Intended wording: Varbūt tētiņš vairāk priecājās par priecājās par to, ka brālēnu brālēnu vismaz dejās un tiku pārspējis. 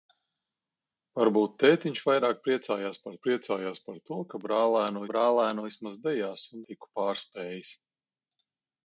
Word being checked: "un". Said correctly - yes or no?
yes